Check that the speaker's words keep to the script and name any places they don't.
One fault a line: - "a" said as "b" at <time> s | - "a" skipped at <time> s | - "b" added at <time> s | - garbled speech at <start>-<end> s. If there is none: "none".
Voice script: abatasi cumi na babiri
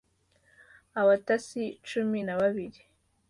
none